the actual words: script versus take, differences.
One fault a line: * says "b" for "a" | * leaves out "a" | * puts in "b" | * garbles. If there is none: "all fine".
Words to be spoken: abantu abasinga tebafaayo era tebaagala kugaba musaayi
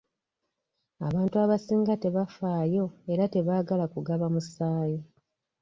all fine